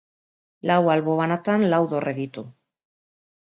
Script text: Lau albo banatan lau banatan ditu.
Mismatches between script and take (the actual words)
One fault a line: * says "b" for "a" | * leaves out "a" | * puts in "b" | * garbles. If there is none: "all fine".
* says "dorre" for "banatan"